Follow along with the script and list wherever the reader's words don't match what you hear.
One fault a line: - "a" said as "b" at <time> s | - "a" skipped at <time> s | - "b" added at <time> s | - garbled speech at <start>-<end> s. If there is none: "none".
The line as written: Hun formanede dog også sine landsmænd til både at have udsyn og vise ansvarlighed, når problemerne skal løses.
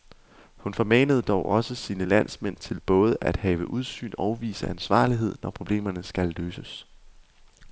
none